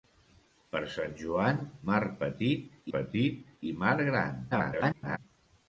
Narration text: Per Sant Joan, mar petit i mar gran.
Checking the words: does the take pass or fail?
fail